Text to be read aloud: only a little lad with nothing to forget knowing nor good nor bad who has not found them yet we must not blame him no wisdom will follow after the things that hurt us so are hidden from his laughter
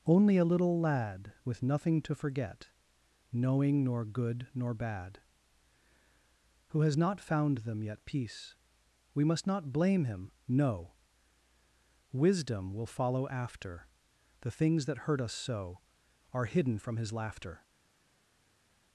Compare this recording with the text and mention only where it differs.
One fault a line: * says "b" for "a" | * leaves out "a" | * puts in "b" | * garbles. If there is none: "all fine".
* puts in "peace"